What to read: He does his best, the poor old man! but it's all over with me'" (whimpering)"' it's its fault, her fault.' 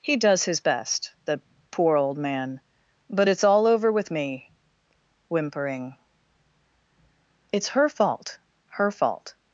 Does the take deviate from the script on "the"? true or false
false